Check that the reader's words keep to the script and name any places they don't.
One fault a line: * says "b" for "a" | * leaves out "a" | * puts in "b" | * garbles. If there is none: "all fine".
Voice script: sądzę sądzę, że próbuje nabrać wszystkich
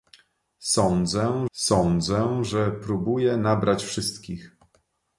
all fine